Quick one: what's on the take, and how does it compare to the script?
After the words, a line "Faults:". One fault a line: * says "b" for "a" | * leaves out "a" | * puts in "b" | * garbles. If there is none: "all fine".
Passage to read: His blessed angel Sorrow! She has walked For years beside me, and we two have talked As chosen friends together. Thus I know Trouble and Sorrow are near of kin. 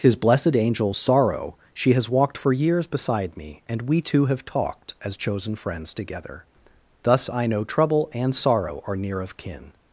His blessed angel Sorrow! She has walked For years beside me, and we two have talked As chosen friends together. Thus I know Trouble and Sorrow are near of kin.
Faults:
all fine